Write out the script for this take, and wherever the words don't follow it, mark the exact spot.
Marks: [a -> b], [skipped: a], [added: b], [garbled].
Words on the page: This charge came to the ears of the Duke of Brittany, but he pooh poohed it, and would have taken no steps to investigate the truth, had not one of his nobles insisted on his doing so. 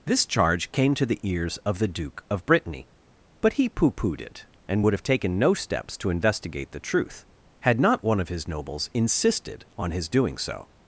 This charge came to the ears of the Duke of Brittany, but he pooh poohed it, and would have taken no steps to investigate the truth, had not one of his nobles insisted on his doing so.